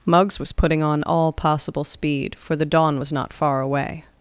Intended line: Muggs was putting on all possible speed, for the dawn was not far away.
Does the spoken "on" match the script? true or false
true